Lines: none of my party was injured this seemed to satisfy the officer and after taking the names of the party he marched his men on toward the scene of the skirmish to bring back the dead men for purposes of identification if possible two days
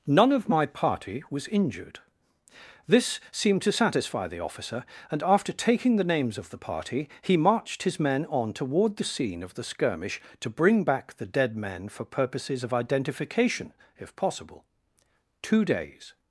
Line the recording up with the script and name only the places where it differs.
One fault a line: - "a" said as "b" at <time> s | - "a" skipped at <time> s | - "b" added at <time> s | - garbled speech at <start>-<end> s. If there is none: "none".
none